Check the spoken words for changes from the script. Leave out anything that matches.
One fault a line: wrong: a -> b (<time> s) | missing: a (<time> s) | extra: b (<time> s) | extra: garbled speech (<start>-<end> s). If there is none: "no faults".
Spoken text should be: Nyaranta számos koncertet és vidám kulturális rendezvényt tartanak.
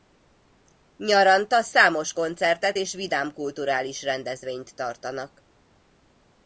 no faults